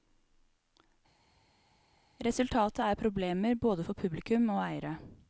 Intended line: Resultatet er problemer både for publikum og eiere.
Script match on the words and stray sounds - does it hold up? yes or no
yes